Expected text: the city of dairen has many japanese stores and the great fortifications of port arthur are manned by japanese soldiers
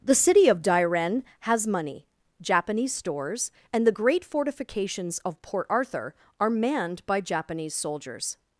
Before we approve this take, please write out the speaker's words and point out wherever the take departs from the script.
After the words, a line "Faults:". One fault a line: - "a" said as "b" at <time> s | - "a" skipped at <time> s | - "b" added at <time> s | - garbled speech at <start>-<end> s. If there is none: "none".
the city of dairen has money japanese stores and the great fortifications of port arthur are manned by japanese soldiers
Faults:
- "many" said as "money" at 1.7 s